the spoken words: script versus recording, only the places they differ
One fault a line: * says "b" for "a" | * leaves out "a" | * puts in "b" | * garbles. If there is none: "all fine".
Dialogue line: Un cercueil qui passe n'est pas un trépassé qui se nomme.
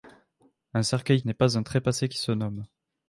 * leaves out "qui passe"